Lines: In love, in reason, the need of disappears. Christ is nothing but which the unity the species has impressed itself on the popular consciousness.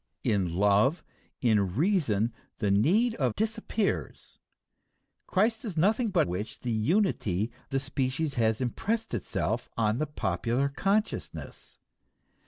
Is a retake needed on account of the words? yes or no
no